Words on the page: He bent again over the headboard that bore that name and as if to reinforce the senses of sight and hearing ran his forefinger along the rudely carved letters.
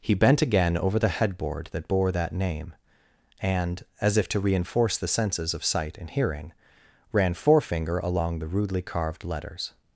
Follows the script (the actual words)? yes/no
no